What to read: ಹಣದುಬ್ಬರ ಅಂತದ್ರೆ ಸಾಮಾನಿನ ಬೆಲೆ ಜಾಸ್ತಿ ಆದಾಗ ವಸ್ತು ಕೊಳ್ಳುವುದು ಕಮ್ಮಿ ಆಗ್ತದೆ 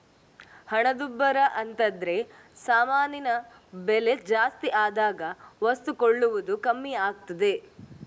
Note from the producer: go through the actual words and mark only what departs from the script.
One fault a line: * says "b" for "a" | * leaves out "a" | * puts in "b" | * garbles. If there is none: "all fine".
all fine